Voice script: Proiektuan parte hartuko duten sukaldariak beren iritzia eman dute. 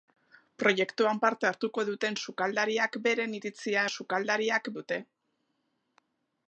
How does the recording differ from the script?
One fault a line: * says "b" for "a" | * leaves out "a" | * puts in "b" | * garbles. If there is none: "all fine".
* says "sukaldariak" for "eman"